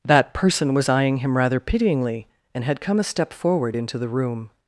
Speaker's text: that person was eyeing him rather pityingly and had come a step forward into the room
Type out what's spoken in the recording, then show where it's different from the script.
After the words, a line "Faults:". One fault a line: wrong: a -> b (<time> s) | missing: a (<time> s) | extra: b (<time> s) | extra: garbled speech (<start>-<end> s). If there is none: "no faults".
that person was eyeing him rather pityingly and had come a step forward into the room
Faults:
no faults